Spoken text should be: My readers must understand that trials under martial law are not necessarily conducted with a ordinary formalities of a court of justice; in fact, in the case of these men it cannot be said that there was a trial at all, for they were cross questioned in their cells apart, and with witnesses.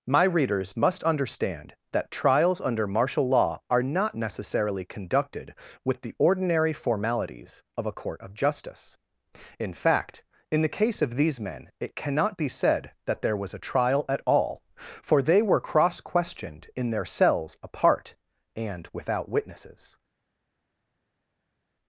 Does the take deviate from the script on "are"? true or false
false